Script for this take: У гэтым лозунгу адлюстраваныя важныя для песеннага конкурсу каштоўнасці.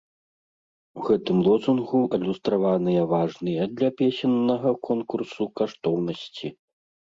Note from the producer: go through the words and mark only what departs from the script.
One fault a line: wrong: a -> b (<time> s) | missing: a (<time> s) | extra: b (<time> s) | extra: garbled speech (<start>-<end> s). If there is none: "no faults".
no faults